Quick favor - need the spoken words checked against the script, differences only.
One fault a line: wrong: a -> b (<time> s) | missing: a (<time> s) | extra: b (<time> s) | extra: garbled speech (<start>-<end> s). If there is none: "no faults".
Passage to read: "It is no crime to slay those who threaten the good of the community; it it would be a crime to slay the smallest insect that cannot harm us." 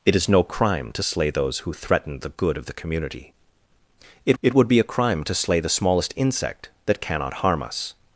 no faults